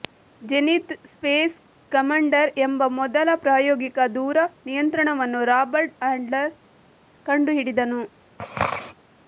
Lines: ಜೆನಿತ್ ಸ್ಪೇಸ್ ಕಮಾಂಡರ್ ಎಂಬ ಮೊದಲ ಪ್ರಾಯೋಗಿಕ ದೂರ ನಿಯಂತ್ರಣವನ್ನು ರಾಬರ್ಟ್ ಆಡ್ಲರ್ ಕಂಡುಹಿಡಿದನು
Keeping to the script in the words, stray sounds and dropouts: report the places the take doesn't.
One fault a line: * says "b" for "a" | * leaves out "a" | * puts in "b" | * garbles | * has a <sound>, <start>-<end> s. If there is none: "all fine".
* has a throat clearing, 8.4-8.9 s